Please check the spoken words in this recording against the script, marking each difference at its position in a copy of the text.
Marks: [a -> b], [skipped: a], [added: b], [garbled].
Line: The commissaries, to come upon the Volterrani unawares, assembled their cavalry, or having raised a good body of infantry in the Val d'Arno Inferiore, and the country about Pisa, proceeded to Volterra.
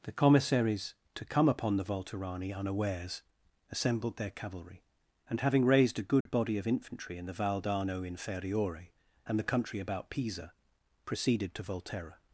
The commissaries, to come upon the Volterrani unawares, assembled their cavalry, [or -> and] having raised a good body of infantry in the Val d'Arno Inferiore, and the country about Pisa, proceeded to Volterra.